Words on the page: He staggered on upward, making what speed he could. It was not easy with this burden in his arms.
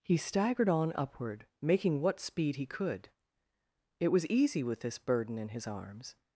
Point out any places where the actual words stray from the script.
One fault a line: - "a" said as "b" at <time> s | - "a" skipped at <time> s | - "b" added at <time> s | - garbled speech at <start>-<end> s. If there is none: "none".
- "not" skipped at 4.2 s